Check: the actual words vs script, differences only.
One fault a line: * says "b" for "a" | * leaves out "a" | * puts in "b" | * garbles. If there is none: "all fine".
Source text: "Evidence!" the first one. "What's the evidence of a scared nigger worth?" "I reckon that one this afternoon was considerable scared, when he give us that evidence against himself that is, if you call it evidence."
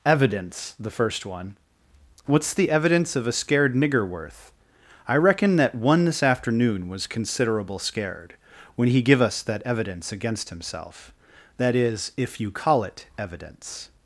all fine